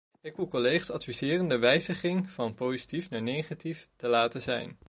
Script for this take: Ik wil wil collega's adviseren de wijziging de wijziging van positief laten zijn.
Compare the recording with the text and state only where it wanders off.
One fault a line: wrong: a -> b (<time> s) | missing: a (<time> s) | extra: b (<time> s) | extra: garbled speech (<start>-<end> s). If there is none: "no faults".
missing: wil (0.5 s)
wrong: de wijziging van positief -> van positief naar negatief te (2.3 s)